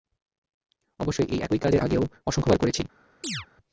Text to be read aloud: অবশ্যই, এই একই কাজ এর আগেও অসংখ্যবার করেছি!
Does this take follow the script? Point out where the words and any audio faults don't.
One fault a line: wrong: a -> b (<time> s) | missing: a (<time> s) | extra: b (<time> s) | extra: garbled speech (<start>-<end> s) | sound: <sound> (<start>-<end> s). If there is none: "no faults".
sound: chirp (3.2-3.5 s)